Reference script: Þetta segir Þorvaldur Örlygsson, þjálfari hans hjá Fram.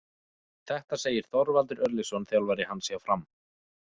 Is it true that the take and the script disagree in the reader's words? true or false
false